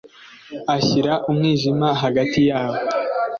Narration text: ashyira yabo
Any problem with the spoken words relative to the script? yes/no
yes